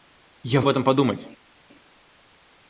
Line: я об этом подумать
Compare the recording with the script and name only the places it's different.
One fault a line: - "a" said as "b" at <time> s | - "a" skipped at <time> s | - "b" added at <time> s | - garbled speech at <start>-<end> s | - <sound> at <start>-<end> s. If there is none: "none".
none